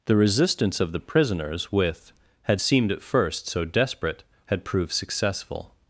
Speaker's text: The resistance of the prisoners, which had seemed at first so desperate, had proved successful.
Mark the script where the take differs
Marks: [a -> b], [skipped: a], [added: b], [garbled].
The resistance of the prisoners, [which -> with] had seemed at first so desperate, had proved successful.